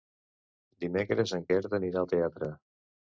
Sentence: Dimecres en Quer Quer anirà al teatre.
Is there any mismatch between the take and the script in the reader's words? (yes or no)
yes